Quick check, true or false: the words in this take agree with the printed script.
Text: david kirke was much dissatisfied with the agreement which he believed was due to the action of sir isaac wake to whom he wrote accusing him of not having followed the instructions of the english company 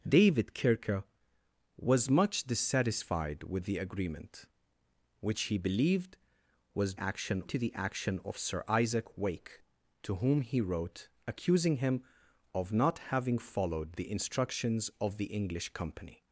false